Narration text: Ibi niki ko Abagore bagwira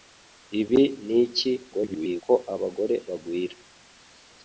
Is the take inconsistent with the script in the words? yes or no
yes